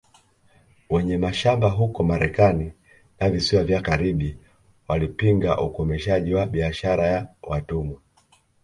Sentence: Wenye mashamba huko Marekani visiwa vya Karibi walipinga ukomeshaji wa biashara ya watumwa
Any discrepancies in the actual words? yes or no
yes